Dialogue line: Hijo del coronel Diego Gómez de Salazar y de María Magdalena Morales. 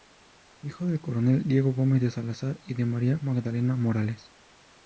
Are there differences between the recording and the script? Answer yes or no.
no